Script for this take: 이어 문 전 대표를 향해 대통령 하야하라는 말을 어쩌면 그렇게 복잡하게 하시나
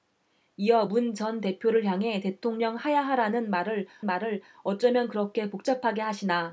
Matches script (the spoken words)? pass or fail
fail